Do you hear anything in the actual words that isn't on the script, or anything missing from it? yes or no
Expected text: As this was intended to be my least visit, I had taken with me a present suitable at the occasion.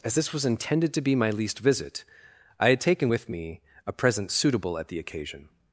no